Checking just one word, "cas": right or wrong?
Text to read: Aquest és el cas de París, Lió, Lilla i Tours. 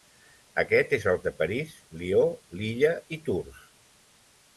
wrong